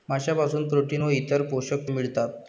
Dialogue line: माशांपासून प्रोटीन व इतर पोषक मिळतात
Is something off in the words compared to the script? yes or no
no